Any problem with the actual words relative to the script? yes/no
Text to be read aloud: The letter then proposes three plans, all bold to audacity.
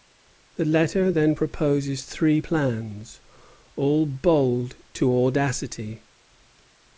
no